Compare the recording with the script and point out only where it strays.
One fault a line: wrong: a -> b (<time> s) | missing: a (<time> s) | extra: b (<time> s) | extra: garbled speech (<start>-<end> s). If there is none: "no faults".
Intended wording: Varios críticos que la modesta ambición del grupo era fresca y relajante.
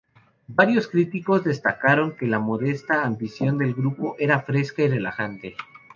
extra: destacaron (1.4 s)